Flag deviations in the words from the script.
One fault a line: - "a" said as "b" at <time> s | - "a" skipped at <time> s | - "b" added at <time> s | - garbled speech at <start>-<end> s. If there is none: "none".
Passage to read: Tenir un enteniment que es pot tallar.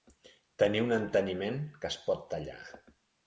none